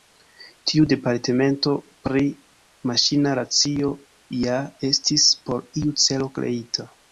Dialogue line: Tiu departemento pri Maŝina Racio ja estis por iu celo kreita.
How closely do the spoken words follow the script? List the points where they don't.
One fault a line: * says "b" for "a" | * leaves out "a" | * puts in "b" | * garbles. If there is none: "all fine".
all fine